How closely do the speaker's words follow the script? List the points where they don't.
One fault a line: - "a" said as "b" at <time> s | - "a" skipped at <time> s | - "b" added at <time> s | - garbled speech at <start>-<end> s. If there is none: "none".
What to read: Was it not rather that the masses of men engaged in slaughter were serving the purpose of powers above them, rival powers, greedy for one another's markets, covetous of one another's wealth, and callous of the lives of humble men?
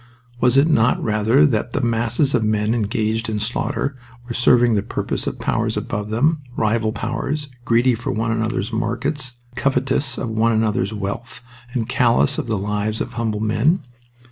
none